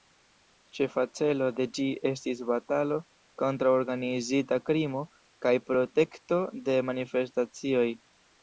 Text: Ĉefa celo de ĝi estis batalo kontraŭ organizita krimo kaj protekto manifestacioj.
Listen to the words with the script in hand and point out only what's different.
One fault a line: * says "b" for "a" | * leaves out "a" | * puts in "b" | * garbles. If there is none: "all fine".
* puts in "de"